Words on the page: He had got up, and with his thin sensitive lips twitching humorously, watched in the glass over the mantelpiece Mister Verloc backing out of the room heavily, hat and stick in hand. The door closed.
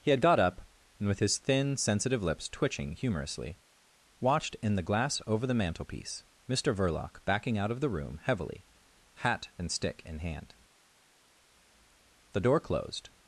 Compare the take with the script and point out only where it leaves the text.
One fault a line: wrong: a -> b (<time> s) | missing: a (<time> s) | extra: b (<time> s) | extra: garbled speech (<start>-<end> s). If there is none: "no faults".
no faults